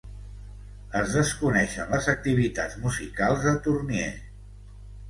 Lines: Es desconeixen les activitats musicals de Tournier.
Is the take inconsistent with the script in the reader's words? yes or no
no